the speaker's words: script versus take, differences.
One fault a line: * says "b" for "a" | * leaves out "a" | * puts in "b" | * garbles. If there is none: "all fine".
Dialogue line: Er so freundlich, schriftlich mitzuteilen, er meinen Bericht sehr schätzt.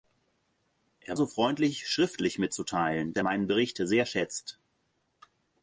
all fine